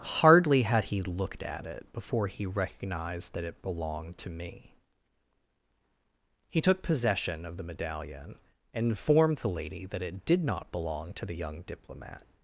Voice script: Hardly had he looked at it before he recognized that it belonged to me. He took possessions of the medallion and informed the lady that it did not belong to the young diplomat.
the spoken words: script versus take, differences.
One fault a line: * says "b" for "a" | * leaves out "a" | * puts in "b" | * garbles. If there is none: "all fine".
* says "possession" for "possessions"